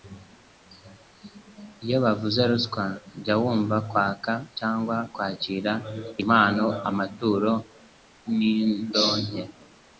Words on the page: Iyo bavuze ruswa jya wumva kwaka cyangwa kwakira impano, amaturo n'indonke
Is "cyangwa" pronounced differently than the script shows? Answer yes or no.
no